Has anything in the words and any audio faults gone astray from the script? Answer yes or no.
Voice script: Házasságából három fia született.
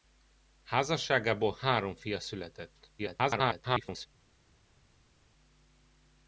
yes